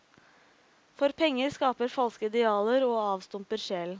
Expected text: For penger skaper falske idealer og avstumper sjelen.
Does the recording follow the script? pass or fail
pass